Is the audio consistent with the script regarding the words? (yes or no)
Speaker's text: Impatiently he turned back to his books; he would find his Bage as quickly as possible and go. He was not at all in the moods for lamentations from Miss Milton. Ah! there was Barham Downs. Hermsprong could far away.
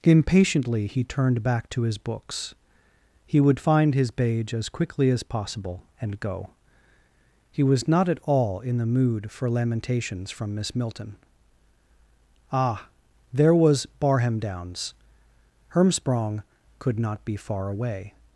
no